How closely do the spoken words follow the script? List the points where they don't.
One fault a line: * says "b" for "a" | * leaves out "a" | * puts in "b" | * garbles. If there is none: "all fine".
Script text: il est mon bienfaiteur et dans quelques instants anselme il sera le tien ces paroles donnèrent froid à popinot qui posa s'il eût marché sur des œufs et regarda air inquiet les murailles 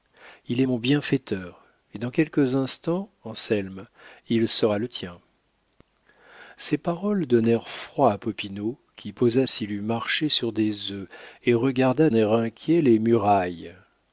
all fine